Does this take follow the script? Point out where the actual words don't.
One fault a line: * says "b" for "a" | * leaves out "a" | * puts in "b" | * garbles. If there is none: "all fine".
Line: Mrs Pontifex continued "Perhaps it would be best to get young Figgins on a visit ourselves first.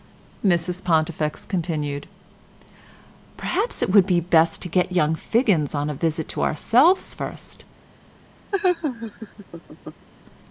* puts in "to"